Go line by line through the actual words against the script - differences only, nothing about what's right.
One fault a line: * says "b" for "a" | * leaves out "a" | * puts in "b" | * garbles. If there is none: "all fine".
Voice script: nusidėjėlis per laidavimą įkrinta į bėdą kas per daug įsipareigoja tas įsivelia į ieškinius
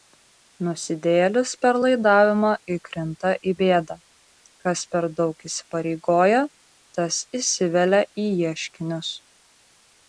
all fine